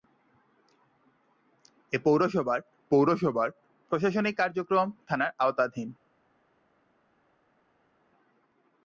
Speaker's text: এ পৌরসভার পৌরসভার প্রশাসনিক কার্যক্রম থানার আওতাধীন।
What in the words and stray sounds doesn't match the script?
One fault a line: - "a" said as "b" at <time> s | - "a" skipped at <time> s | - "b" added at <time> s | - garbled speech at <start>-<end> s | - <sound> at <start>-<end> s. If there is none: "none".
none